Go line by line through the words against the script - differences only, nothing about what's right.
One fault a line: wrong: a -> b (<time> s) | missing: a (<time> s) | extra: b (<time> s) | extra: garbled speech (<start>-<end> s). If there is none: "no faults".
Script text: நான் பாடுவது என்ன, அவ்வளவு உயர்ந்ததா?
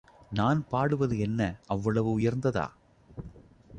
no faults